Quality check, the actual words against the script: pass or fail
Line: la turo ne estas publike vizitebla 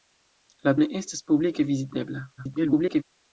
fail